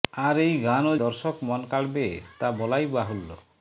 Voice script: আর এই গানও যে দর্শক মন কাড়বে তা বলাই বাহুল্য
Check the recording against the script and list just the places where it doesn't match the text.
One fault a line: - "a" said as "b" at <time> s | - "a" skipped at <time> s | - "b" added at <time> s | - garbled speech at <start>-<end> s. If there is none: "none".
- "যে" skipped at 0.9 s